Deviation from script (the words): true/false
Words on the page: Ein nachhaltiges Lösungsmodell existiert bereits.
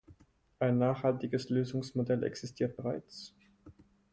false